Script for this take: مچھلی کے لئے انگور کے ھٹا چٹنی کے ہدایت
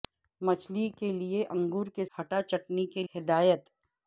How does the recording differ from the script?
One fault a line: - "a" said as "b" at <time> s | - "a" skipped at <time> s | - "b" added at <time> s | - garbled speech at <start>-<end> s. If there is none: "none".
none